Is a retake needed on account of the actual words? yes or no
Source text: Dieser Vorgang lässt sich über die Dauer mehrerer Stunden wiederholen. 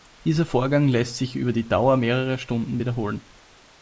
no